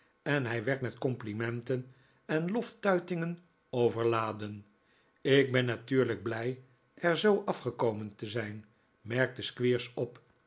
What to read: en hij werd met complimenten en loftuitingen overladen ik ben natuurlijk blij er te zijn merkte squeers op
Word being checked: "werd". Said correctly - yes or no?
yes